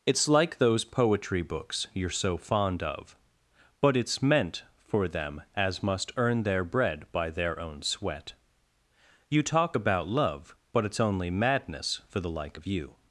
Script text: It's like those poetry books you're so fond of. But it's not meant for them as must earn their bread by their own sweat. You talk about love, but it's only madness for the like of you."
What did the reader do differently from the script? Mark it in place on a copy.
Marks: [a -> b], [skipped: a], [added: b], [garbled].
It's like those poetry books you're so fond of. But it's [skipped: not] meant for them as must earn their bread by their own sweat. You talk about love, but it's only madness for the like of you."